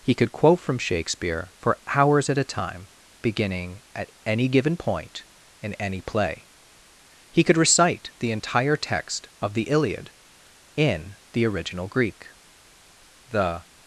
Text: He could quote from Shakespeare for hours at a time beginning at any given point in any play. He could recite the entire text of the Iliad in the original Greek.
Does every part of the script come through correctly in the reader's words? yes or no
no